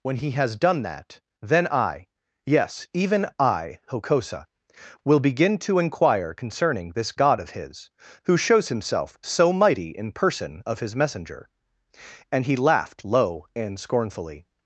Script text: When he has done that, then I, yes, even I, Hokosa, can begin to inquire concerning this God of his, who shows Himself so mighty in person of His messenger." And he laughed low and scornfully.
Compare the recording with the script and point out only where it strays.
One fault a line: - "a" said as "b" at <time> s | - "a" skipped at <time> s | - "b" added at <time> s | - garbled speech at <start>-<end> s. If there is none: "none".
- "can" said as "will" at 5.0 s